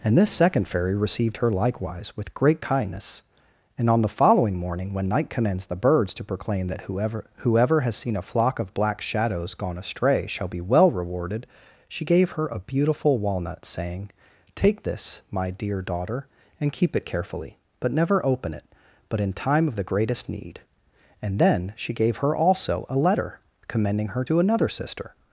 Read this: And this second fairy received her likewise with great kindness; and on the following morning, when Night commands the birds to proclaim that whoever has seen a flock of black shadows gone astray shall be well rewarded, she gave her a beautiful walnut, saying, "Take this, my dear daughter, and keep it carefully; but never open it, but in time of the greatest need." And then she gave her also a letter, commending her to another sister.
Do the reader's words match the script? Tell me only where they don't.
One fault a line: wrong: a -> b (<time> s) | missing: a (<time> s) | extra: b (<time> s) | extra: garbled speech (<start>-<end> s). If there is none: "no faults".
extra: whoever (7.4 s)